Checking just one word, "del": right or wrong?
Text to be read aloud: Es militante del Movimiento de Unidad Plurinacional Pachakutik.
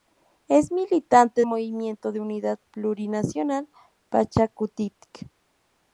wrong